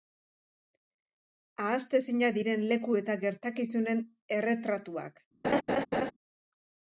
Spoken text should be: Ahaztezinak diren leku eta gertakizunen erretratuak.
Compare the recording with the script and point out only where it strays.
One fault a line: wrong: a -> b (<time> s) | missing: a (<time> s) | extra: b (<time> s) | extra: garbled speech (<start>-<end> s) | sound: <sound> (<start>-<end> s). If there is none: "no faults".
sound: laugh (5.4-6.1 s)